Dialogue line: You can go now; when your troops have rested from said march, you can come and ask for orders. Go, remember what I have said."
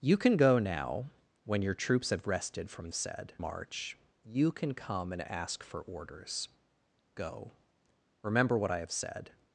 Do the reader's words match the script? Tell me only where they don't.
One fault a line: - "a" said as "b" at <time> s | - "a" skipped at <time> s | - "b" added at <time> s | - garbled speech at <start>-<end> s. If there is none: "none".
none